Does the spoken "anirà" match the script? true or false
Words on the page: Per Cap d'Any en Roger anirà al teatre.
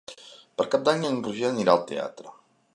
true